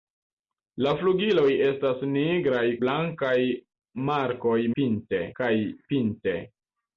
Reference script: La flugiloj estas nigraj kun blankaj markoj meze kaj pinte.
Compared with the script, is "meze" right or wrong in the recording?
wrong